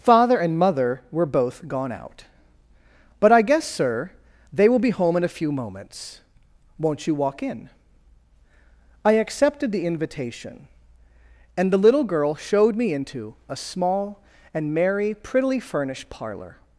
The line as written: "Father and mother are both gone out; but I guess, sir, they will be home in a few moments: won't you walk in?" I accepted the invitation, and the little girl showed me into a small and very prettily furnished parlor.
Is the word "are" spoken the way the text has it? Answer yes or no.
no